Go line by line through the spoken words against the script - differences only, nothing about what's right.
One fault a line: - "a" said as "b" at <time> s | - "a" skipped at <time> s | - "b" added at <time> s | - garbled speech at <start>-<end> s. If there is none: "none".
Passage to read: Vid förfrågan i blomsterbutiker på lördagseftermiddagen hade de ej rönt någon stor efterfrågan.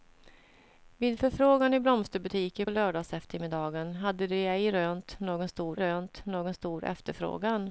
- "på" skipped at 2.6 s
- "rönt någon stor" added at 5.8 s